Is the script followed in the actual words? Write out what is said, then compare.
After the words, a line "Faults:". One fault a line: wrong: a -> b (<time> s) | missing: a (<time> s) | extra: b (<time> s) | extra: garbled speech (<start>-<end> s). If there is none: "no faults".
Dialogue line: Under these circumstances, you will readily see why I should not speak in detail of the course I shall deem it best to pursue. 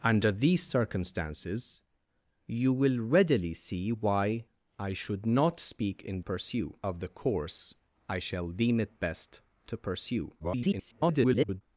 Under these circumstances, you will readily see why I should not speak in pursue of the course I shall deem it best to pursue. [garbled]
Faults:
wrong: detail -> pursue (6.2 s)
extra: garbled speech (10.4-11.6 s)